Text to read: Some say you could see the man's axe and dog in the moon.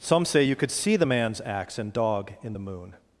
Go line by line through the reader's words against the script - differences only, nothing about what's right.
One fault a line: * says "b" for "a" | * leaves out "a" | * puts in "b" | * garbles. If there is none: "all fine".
all fine